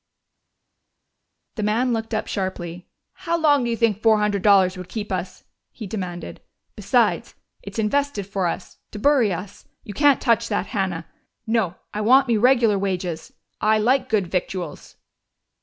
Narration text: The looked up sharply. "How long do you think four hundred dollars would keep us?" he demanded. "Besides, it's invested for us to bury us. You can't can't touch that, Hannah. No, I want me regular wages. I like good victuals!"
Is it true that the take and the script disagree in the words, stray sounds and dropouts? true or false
true